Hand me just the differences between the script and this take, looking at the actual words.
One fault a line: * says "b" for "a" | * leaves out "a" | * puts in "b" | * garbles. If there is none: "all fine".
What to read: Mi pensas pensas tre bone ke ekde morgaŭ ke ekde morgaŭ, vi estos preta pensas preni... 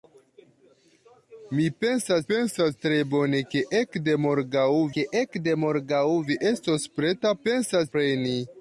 all fine